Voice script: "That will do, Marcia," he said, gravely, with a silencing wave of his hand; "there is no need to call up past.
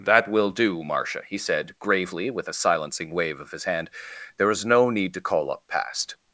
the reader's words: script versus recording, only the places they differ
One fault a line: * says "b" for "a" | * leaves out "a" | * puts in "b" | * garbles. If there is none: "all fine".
all fine